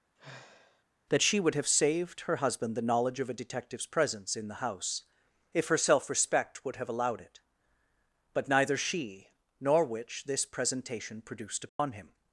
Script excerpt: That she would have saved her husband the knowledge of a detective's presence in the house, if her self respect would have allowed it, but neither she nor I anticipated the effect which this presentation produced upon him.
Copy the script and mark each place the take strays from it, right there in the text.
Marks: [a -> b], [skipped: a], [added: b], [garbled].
That she would have saved her husband the knowledge of a detective's presence in the house, if her self respect would have allowed it, but neither she nor [skipped: I anticipated the effect] which this presentation produced upon him.